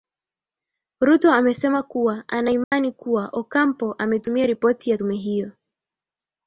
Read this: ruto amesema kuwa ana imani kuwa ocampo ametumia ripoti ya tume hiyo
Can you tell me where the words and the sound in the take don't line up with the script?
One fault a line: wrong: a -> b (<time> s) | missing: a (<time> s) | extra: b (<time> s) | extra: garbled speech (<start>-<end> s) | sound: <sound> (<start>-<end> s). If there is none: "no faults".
sound: dropout (2.6-2.7 s)